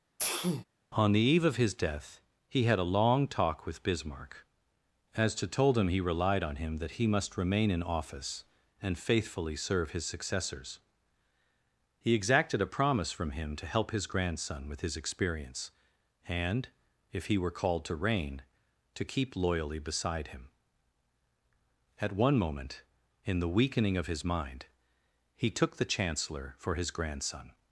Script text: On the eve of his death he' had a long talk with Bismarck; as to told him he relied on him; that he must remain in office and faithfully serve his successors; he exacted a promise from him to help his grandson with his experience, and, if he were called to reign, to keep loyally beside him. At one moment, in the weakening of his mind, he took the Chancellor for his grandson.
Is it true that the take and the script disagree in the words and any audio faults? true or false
true